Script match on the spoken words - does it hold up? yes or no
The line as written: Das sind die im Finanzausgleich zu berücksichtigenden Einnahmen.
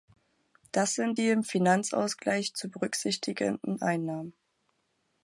yes